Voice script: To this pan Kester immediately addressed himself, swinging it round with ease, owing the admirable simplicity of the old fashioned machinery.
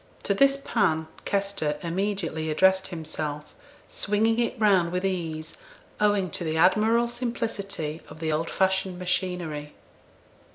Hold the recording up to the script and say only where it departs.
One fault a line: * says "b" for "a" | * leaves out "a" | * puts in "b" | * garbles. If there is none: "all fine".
* puts in "to"